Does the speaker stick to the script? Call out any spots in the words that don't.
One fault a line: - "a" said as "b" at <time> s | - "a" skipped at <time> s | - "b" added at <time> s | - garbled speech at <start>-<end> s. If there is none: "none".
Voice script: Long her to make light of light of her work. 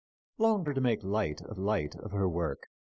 none